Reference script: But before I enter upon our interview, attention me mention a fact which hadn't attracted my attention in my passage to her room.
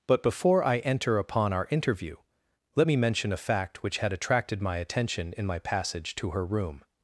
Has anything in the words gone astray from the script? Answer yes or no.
yes